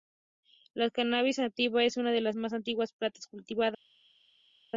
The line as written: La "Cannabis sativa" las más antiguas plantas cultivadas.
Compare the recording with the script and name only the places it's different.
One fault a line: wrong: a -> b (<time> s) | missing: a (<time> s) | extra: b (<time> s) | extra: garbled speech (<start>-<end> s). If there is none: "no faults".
extra: es una de (1.8 s)